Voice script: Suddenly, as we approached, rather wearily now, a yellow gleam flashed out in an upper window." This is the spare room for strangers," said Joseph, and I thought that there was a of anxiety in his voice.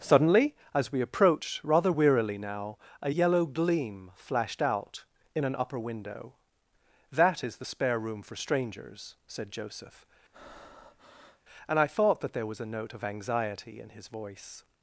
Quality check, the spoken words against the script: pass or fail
fail